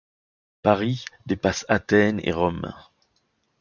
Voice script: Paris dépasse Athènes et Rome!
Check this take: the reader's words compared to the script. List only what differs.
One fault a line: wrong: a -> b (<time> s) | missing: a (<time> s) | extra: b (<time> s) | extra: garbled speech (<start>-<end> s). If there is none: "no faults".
no faults